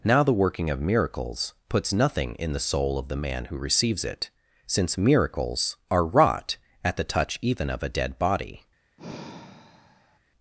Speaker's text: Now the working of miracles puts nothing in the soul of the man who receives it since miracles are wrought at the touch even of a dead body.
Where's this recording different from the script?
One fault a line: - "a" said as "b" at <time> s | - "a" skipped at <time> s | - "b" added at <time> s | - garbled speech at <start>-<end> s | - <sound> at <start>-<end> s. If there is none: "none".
- sigh at 9.0-10.2 s